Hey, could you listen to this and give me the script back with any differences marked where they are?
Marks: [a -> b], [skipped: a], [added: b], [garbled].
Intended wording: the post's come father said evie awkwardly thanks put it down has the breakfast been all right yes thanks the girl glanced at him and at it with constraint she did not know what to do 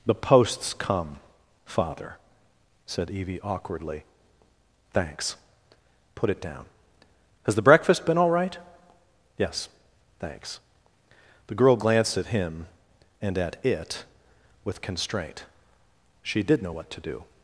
the post's come father said evie awkwardly thanks put it down has the breakfast been all right yes thanks the girl glanced at him and at it with constraint she did [skipped: not] know what to do